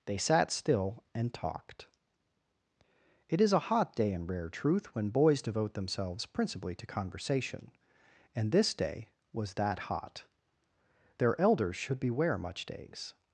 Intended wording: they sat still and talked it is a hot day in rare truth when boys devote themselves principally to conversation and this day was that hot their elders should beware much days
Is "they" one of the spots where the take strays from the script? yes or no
no